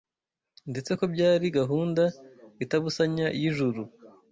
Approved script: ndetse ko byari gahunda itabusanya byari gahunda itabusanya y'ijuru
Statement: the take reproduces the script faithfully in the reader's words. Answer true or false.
false